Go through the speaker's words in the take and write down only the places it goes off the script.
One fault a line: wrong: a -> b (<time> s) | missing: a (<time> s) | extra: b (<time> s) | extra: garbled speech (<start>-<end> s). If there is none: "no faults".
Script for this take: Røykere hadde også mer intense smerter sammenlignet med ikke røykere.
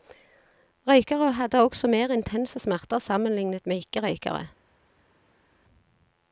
no faults